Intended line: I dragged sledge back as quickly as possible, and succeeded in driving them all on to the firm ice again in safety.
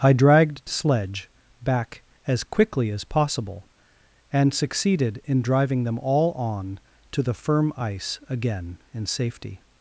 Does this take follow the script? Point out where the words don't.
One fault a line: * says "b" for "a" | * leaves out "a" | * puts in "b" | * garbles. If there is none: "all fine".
all fine